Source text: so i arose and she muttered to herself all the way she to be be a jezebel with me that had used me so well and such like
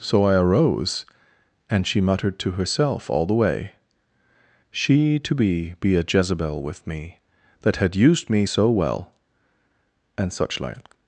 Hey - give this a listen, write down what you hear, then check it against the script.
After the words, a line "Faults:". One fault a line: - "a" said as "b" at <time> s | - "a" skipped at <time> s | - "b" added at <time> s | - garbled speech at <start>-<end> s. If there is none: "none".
so i arose and she muttered to herself all the way she to be be a jezebel with me that had used me so well and such like
Faults:
none